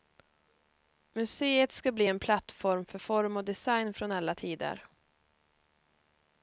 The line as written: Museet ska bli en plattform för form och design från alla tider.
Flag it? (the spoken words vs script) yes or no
no